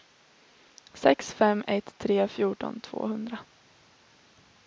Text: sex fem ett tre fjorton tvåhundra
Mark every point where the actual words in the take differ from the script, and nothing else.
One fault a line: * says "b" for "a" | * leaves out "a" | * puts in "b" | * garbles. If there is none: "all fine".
all fine